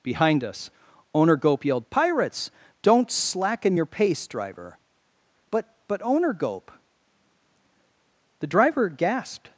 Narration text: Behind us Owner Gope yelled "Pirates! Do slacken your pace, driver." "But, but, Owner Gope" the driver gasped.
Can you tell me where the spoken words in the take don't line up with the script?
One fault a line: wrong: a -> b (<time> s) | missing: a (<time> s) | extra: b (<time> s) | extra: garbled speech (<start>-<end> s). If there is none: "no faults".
wrong: Do -> Don't (2.8 s)